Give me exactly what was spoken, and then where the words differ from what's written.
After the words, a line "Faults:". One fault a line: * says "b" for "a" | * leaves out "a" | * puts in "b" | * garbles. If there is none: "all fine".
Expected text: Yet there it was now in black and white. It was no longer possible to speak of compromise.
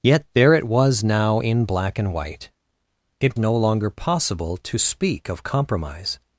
Yet there it was now in black and white. It no longer possible to speak of compromise.
Faults:
* leaves out "was"